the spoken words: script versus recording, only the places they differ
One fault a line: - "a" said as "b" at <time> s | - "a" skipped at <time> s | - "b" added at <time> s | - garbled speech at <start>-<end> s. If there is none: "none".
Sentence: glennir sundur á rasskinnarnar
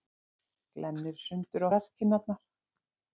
none